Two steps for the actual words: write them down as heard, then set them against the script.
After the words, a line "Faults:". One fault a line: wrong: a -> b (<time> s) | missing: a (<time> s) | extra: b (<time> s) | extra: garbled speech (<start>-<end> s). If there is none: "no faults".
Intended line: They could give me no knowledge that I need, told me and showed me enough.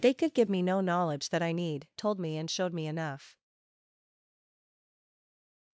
They could give me no knowledge that I need, told me and showed me enough.
Faults:
no faults